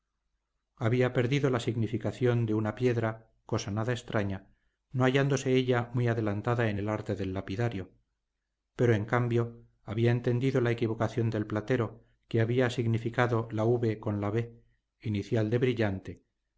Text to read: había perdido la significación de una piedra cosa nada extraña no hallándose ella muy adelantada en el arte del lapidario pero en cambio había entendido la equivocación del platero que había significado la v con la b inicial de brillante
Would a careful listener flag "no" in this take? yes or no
no